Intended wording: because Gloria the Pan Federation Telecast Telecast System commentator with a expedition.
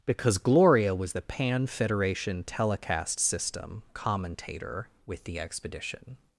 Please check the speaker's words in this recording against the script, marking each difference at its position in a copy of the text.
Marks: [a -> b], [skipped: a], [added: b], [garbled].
because Gloria [added: was] the Pan Federation Telecast [skipped: Telecast] System commentator with [a -> the] expedition.